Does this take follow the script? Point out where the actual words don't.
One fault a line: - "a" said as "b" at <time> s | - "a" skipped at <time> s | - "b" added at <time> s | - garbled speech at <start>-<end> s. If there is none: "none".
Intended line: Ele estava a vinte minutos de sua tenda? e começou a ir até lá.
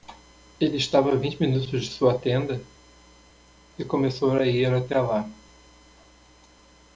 none